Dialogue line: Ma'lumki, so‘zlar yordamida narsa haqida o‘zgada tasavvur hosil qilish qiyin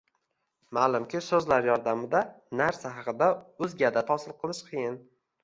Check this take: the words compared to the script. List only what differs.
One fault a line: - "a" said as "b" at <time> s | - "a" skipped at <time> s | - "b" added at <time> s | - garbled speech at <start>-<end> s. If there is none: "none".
- "tasavvur" skipped at 4.1 s